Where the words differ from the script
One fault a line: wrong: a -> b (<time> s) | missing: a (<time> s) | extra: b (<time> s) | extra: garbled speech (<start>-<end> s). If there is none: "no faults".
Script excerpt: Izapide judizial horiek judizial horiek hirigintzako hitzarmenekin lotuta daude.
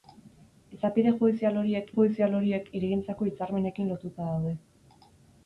no faults